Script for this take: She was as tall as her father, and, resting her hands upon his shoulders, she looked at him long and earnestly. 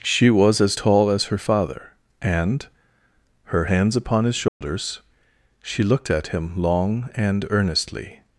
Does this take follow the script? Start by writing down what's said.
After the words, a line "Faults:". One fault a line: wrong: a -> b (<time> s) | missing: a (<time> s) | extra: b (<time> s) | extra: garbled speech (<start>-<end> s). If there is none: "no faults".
She was as tall as her father, and, her hands upon his shoulders, she looked at him long and earnestly.
Faults:
missing: resting (2.7 s)